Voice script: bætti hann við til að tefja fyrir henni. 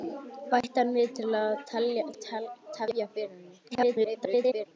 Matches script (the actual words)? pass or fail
fail